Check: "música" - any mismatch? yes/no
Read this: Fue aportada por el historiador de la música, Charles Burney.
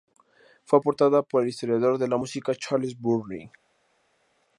no